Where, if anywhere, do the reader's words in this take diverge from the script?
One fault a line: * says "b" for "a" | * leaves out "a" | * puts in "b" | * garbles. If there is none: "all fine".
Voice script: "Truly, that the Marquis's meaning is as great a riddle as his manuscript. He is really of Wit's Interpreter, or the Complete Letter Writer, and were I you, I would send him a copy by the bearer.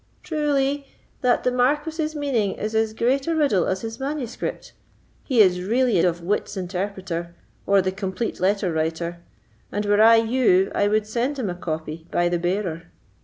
all fine